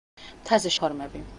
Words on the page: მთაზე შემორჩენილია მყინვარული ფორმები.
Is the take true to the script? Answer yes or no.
no